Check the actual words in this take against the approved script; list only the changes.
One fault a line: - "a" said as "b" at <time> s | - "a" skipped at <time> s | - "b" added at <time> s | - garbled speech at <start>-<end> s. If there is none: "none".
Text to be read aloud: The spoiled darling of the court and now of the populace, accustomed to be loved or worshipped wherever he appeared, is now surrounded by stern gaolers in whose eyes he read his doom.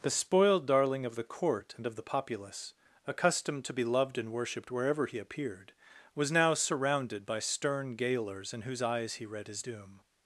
- "now" skipped at 1.9 s
- "or" said as "and" at 4.2 s
- "is" said as "was" at 6.2 s